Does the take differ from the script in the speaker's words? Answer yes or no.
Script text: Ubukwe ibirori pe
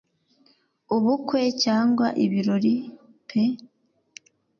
yes